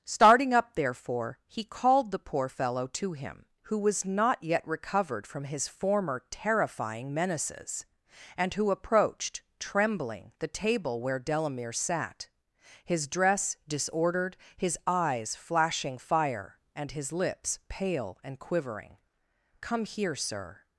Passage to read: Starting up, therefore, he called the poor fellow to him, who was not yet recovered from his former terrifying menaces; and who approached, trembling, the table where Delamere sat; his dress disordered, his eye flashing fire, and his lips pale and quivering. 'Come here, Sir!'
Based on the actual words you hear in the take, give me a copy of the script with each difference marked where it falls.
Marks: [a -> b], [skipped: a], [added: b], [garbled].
Starting up, therefore, he called the poor fellow to him, who was not yet recovered from his former terrifying menaces; and who approached, trembling, the table where Delamere sat; his dress disordered, his [eye -> eyes] flashing fire, and his lips pale and quivering. 'Come here, Sir!'